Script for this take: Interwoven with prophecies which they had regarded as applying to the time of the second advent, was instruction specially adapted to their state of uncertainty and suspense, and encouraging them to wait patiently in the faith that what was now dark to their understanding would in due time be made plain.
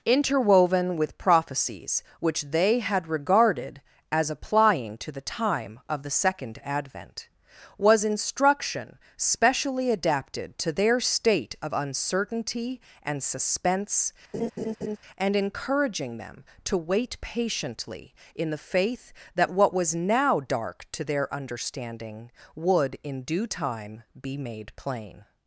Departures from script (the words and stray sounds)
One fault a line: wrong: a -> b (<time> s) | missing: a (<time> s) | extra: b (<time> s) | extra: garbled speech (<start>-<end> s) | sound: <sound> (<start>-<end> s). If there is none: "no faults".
sound: laugh (14.3-15.0 s)